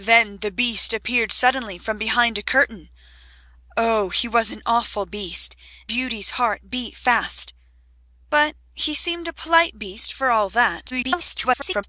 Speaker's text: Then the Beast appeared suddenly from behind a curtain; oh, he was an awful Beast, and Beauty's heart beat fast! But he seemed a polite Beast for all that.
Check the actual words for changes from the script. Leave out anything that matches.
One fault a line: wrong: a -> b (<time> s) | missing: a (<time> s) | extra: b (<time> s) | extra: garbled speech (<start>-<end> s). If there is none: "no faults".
missing: and (5.5 s)
extra: garbled speech (10.9-11.8 s)